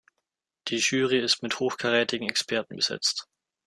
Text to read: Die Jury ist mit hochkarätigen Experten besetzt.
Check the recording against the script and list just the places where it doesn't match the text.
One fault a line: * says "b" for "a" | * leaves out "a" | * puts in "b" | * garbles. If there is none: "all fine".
all fine